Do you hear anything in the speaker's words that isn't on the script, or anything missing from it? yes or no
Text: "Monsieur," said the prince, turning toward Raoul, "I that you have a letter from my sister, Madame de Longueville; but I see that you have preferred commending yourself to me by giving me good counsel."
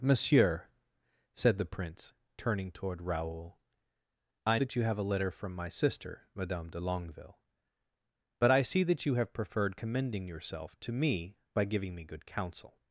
no